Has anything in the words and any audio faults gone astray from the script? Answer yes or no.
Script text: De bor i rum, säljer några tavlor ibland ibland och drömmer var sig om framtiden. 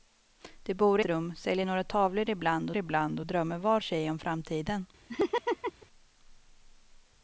yes